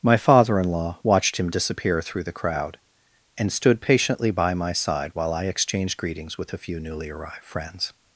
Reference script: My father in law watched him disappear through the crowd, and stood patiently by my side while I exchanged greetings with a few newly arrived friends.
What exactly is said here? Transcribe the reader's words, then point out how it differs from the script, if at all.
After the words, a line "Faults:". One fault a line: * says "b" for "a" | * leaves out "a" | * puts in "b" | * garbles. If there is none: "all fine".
My father in law watched him disappear through the crowd, and stood patiently by my side while I exchanged greetings with a few newly arrived friends.
Faults:
all fine